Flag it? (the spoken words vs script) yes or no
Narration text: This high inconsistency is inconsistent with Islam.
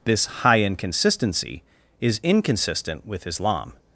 no